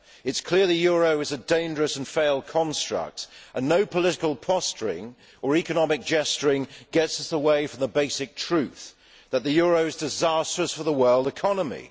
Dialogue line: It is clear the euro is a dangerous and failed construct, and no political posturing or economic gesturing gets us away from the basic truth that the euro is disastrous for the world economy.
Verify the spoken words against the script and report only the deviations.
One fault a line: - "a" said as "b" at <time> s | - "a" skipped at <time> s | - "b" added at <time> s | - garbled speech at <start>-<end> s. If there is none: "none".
none